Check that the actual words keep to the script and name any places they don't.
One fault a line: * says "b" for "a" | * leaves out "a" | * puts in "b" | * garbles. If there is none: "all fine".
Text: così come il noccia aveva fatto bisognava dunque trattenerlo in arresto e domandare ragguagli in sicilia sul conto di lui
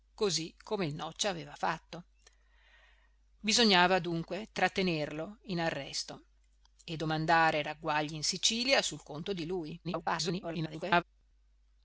* garbles